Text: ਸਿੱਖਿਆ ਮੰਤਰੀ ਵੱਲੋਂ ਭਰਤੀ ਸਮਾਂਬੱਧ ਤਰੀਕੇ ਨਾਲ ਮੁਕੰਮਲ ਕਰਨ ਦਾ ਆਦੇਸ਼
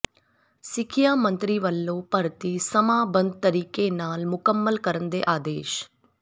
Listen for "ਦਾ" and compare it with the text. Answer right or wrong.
wrong